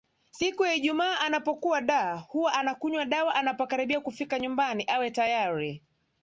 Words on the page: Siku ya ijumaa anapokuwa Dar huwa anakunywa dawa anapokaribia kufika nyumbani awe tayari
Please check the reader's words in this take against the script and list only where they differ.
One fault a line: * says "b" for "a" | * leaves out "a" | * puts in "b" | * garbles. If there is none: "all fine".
all fine